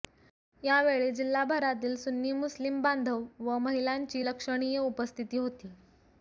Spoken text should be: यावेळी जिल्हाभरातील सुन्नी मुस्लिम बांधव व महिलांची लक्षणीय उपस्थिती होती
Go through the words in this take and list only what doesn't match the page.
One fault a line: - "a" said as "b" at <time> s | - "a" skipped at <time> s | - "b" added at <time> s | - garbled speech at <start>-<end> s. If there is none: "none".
none